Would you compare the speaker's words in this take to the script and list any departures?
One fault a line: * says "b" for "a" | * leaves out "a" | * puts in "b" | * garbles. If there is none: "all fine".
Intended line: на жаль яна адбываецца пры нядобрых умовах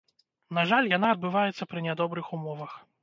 all fine